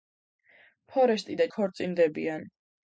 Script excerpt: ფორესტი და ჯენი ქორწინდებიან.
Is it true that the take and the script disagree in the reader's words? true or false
true